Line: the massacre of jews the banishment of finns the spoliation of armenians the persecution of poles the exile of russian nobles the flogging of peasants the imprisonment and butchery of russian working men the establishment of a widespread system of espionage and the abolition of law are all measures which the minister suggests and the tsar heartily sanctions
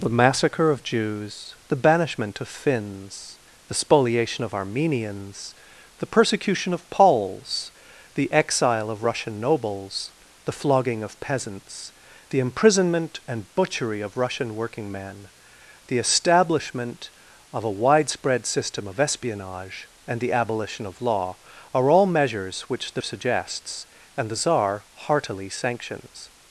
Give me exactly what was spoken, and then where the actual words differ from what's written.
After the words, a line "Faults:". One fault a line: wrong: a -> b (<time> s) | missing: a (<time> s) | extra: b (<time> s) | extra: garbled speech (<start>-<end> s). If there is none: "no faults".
the massacre of jews the banishment of finns the spoliation of armenians the persecution of poles the exile of russian nobles the flogging of peasants the imprisonment and butchery of russian working men the establishment of a widespread system of espionage and the abolition of law are all measures which the suggests and the tsar heartily sanctions
Faults:
missing: minister (23.0 s)